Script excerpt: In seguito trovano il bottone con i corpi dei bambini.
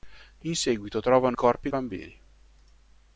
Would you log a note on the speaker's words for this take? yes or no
yes